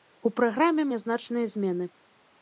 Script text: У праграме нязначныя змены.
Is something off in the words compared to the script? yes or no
no